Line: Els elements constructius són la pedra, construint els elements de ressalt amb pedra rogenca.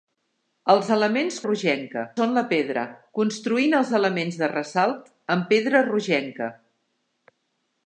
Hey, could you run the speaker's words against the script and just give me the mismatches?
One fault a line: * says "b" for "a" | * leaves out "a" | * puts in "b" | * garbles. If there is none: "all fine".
* says "rogenca" for "constructius"